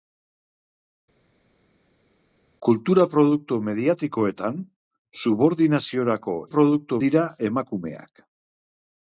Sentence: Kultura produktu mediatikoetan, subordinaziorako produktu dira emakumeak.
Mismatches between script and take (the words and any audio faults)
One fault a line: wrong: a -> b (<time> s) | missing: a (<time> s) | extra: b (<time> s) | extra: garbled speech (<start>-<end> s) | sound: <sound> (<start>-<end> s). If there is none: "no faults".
no faults